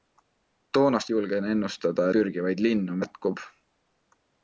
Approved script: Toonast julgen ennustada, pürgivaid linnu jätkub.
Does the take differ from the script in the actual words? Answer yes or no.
no